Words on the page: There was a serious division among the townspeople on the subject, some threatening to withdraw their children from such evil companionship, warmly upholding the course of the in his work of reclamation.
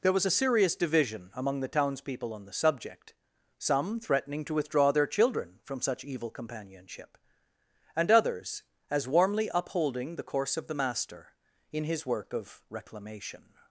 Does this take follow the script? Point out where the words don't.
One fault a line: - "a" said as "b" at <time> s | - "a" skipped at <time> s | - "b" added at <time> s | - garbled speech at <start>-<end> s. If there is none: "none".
- "and others as" added at 8.0 s
- "master" added at 10.7 s